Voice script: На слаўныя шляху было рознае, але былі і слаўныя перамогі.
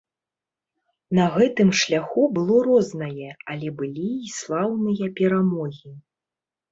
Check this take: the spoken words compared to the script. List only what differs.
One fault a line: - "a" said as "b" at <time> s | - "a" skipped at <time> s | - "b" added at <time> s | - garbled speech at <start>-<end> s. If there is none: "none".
- "слаўныя" said as "гэтым" at 1.4 s